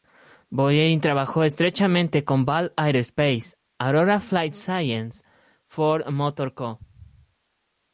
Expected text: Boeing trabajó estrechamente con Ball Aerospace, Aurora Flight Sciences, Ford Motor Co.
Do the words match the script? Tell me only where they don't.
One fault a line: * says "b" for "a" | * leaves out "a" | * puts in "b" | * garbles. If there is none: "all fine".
all fine